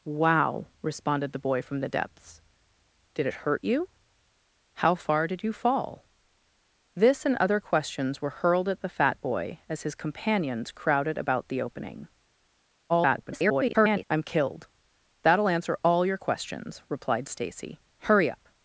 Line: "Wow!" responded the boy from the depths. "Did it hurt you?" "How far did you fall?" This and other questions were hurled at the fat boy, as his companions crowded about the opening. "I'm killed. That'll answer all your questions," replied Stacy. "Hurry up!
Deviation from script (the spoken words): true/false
true